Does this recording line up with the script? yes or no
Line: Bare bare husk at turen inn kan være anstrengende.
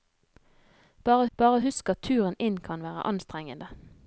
yes